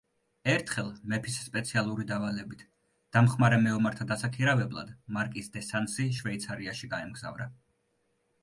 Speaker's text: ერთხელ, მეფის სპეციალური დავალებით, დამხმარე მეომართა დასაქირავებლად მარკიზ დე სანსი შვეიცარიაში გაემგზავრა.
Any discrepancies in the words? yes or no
no